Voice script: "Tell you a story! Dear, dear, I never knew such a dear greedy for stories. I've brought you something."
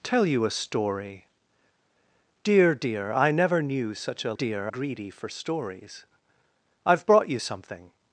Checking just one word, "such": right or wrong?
right